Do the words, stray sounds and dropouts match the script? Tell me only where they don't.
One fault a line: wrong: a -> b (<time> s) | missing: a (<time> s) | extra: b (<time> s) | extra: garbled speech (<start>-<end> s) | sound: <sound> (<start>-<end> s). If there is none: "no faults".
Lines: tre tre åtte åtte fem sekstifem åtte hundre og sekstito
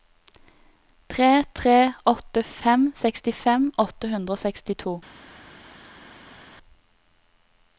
missing: åtte (2.4 s)